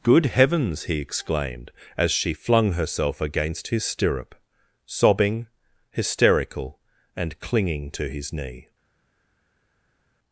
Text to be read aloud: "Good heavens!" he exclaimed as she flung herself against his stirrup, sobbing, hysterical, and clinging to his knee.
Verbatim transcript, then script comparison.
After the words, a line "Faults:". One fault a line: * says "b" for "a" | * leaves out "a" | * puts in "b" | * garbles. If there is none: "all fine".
"Good heavens!" he exclaimed as she flung herself against his stirrup, sobbing, hysterical, and clinging to his knee.
Faults:
all fine